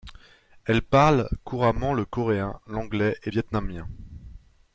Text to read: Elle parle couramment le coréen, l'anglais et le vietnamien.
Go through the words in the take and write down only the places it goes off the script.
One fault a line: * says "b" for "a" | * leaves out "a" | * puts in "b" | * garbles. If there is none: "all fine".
* leaves out "le"